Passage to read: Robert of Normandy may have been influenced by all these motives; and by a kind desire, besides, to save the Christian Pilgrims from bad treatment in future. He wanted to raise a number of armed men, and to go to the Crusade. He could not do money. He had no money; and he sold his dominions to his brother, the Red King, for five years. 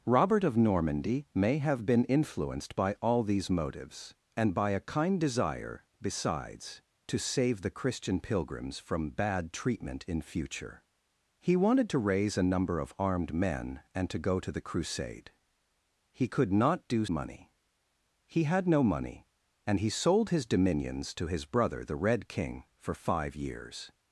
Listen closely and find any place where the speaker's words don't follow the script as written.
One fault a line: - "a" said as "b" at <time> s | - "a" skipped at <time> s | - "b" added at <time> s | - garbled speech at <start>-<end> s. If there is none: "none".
none